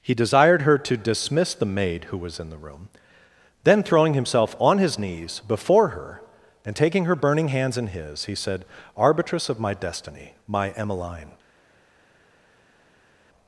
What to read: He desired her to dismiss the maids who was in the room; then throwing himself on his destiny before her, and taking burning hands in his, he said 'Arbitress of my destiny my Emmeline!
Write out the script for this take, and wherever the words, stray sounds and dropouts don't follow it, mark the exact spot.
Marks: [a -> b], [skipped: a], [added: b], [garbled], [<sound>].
He desired her to dismiss the [maids -> maid] who was in the room; then throwing himself on his [destiny -> knees] before her, and taking [added: her] burning hands in his, he said 'Arbitress of my destiny my Emmeline!